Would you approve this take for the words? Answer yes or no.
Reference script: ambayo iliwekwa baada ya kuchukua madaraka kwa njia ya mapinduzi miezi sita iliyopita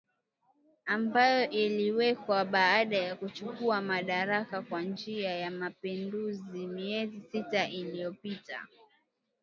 yes